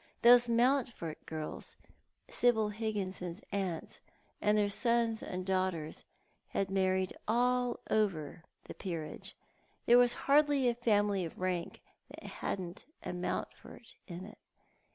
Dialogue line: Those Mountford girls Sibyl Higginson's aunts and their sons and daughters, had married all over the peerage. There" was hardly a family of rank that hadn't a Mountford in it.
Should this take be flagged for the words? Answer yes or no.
no